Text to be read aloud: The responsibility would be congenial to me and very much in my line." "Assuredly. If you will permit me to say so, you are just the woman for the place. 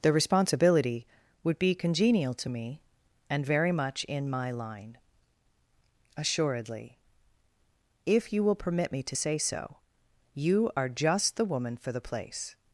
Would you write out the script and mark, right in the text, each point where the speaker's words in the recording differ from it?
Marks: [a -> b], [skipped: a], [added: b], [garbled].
The responsibility would be congenial to me and very much in my line." "Assuredly. If you will permit me to say so, you are just the woman for the place.